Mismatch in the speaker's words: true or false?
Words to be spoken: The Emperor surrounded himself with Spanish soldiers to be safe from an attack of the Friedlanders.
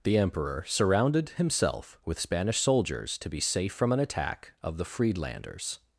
false